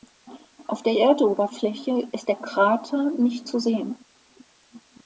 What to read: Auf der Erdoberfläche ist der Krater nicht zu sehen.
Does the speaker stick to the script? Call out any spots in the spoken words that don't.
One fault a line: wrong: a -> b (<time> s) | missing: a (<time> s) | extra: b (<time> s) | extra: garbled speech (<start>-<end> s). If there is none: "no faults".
no faults